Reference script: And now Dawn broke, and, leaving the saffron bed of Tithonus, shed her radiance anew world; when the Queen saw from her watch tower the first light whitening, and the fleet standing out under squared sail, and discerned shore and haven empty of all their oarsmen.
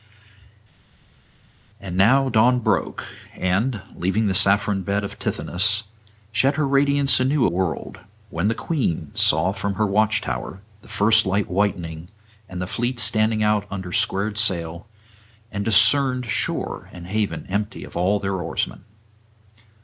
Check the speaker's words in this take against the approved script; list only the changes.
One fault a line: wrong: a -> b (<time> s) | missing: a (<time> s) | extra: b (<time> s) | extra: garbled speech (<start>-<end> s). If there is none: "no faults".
no faults